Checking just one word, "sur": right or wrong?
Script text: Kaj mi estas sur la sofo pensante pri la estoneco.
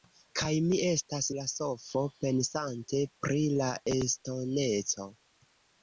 wrong